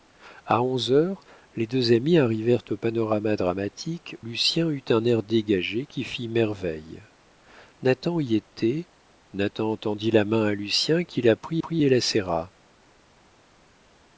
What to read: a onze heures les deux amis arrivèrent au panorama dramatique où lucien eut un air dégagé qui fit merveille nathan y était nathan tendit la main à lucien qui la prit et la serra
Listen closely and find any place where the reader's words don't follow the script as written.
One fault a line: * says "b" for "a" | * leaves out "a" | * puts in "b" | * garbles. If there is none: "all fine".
* leaves out "où"
* puts in "prit"